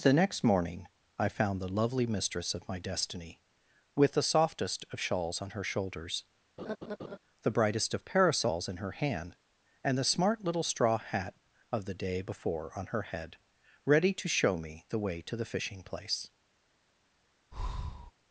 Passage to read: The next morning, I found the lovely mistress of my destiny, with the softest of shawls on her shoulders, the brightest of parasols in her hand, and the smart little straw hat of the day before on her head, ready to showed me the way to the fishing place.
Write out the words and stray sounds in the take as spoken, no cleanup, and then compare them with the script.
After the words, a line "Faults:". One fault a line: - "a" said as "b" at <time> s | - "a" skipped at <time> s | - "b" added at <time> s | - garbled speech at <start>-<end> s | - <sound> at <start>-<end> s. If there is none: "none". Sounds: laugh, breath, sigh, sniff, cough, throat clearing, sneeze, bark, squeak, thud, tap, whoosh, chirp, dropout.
The next morning, I found the lovely mistress of my destiny, with the softest of shawls on her shoulders, the brightest of parasols in her hand, and the smart little straw hat of the day before on her head, ready to show me the way to the fishing place.
Faults:
- laugh at 6.6-7.2 s
- "showed" said as "show" at 14.3 s
- breath at 17.5-18.1 s